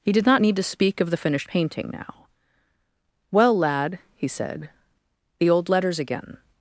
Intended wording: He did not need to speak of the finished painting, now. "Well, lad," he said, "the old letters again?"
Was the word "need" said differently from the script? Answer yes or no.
no